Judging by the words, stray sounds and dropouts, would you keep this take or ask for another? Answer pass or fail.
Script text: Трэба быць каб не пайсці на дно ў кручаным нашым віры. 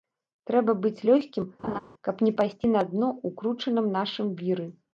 fail